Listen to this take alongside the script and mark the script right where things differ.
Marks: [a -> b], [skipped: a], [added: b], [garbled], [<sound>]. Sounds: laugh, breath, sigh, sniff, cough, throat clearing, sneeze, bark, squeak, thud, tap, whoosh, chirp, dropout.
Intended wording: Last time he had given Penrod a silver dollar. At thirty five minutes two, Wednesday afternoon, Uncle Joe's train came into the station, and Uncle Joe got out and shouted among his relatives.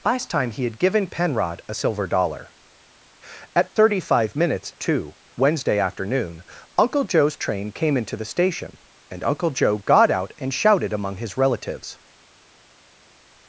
Last time he had given Penrod a silver dollar. At thirty five minutes two, Wednesday afternoon, Uncle Joe's train came into the station, and Uncle Joe got out and shouted among his relatives.